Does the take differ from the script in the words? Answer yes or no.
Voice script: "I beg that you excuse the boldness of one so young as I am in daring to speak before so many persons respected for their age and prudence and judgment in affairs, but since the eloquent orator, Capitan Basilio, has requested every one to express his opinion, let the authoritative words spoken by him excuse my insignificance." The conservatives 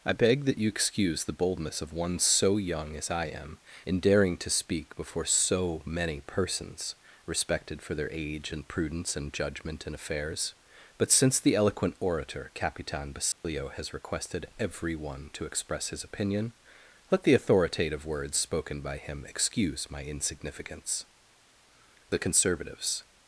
no